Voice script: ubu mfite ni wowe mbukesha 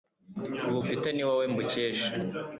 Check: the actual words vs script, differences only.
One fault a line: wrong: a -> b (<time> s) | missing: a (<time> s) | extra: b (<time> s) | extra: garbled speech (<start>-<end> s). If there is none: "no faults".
no faults